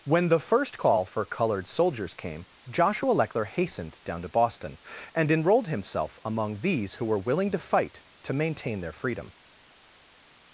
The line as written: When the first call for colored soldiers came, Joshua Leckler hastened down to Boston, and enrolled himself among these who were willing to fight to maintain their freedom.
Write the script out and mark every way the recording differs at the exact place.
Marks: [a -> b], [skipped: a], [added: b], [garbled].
When the first call for colored soldiers came, Joshua Leckler hastened down to Boston, and enrolled himself among these who were willing to fight to maintain their freedom.